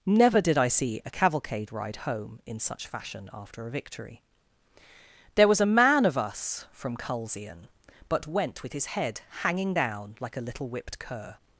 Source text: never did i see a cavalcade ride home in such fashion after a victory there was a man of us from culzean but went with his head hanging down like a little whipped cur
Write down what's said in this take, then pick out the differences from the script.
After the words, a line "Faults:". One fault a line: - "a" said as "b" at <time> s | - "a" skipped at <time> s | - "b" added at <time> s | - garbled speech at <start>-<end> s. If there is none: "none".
never did i see a cavalcade ride home in such fashion after a victory there was a man of us from culzean but went with his head hanging down like a little whipped cur
Faults:
none